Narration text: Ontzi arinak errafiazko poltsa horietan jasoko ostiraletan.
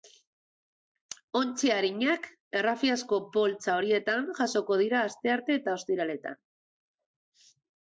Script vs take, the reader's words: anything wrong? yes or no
yes